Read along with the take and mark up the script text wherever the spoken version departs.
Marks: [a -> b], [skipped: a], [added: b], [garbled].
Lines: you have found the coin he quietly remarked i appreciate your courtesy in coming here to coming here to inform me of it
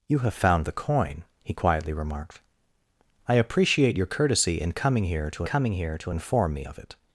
you have found the coin he quietly remarked i appreciate your courtesy in coming here to coming here to inform me of it